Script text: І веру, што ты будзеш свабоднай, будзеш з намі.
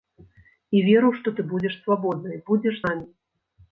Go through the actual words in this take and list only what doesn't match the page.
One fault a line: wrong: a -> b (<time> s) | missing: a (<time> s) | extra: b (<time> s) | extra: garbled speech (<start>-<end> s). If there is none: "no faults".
missing: з (2.8 s)